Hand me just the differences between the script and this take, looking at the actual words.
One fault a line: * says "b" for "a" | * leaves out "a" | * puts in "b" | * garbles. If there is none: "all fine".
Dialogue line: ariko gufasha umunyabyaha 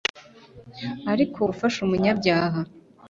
all fine